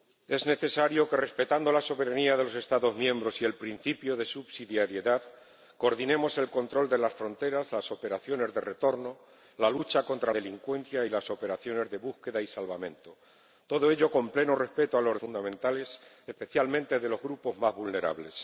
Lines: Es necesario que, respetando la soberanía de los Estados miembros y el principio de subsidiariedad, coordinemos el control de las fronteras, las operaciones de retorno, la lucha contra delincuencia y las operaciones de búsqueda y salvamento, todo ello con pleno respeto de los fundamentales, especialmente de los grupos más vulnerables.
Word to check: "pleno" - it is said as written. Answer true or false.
true